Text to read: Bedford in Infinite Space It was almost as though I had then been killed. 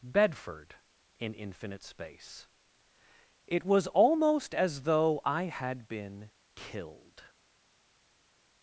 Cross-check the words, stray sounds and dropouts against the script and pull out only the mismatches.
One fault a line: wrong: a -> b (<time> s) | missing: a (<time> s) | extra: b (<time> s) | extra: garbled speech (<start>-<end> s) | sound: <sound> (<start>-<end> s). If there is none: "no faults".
missing: then (5.9 s)